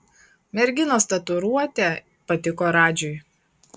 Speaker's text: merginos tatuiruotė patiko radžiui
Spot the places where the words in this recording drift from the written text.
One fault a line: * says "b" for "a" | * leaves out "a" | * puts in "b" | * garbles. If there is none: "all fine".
all fine